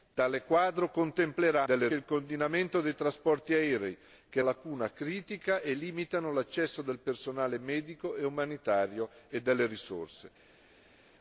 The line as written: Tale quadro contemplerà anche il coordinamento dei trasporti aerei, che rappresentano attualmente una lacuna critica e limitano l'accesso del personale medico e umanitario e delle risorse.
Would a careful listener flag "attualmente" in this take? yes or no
yes